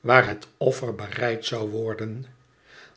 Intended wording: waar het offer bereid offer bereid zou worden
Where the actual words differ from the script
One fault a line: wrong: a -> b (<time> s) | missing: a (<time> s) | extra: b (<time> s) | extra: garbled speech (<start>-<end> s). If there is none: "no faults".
missing: offer bereid (1.4 s)